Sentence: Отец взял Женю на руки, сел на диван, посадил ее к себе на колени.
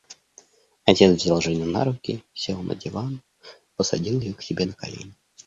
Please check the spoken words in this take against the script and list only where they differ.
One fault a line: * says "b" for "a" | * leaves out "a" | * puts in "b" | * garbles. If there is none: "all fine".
all fine